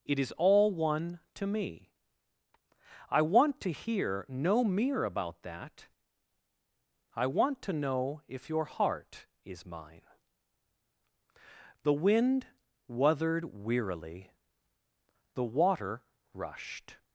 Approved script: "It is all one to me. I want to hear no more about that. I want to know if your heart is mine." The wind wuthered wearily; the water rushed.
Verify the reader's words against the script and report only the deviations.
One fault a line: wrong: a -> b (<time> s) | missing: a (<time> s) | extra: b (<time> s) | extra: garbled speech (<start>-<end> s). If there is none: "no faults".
wrong: more -> mere (4.6 s)